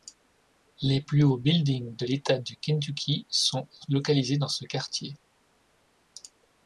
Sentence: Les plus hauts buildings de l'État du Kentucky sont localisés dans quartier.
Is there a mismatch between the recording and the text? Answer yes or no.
yes